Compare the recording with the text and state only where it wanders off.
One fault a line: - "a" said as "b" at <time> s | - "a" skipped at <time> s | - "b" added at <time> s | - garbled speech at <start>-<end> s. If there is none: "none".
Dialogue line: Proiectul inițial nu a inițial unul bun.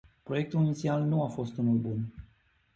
- "inițial" said as "fost" at 1.3 s